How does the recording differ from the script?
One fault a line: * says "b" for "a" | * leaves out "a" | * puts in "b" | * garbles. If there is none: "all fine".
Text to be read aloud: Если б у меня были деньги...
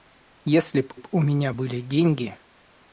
* puts in "б"